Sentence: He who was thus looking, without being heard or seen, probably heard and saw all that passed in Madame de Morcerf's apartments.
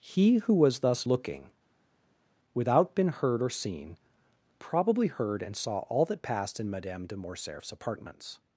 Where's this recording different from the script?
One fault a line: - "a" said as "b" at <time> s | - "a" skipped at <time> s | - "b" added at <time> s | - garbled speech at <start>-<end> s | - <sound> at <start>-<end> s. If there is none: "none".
- "being" said as "been" at 2.9 s